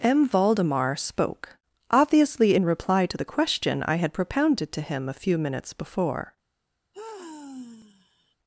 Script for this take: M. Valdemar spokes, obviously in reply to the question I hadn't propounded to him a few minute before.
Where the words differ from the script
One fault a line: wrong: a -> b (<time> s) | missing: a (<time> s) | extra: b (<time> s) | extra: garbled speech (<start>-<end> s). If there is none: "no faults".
wrong: spokes -> spoke (0.9 s)
wrong: hadn't -> had (4.0 s)
wrong: minute -> minutes (5.4 s)